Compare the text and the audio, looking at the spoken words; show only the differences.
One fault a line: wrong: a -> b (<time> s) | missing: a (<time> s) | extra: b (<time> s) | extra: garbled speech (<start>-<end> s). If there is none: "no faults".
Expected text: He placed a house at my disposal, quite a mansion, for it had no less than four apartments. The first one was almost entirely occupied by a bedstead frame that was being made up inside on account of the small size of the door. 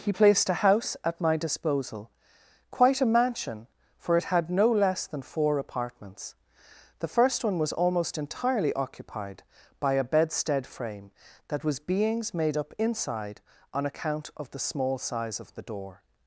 wrong: being -> beings (11.8 s)